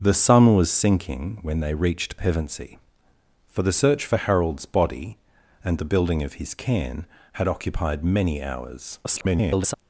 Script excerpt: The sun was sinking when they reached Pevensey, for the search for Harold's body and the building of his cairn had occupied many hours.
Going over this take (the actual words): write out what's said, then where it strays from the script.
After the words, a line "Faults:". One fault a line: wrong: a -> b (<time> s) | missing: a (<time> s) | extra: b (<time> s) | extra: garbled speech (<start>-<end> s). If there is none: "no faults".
The sun was sinking when they reached Pevensey, for the search for Harold's body and the building of his cairn had occupied many hours. [garbled]
Faults:
extra: garbled speech (9.0-9.7 s)